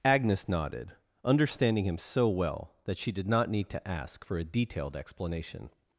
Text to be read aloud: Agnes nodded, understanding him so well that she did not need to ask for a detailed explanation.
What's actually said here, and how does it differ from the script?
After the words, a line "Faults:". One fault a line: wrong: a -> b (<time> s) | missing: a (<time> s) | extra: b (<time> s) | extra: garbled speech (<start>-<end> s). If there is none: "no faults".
Agnes nodded, understanding him so well that she did not need to ask for a detailed explanation.
Faults:
no faults